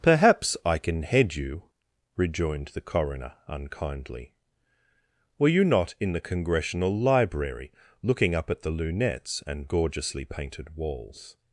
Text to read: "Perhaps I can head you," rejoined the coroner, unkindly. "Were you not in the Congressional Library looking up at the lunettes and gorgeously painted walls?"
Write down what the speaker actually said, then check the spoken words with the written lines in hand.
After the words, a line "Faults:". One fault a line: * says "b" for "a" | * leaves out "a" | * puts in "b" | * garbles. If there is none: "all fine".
"Perhaps I can head you," rejoined the coroner, unkindly. "Were you not in the Congressional Library looking up at the lunettes and gorgeously painted walls?"
Faults:
all fine